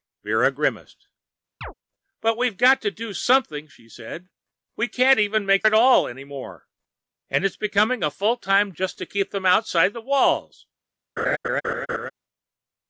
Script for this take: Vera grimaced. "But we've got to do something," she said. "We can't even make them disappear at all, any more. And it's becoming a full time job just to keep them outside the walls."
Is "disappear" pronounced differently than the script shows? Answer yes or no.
yes